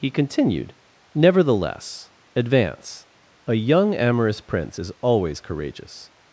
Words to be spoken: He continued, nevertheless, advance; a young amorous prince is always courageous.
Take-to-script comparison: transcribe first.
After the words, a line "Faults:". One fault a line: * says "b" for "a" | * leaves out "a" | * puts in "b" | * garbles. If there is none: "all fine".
He continued, nevertheless, advance; a young amorous prince is always courageous.
Faults:
all fine